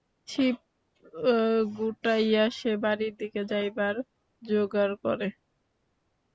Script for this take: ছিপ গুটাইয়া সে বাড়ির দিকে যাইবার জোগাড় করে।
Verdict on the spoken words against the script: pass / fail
pass